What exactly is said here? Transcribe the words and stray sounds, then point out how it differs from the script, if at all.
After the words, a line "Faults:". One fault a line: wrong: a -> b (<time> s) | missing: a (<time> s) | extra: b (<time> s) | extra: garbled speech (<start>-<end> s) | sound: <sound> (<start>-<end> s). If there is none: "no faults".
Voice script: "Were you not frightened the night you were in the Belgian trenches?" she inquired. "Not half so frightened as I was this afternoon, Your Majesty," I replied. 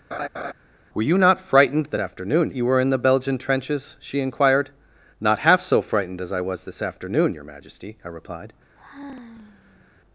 "Were you not frightened the afternoon you were in the Belgian trenches?" she inquired. "Not half so frightened as I was this afternoon, Your Majesty," I replied.
Faults:
sound: laugh (0.1-0.5 s)
wrong: night -> afternoon (2.0 s)
sound: sigh (8.8-10.0 s)